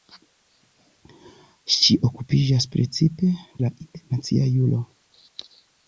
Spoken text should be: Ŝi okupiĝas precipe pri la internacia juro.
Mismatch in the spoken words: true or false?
true